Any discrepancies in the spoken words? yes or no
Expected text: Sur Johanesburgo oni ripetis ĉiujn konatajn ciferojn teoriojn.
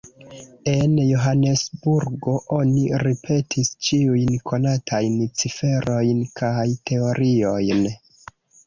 yes